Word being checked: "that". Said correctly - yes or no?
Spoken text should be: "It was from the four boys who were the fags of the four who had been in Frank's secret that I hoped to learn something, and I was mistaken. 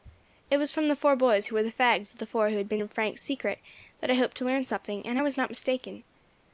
yes